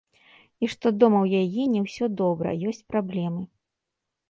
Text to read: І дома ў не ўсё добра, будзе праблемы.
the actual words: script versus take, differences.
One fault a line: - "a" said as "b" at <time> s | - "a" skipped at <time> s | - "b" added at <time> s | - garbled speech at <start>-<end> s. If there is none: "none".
- "што" added at 0.7 s
- "яе" added at 1.4 s
- "будзе" said as "ёсць" at 2.7 s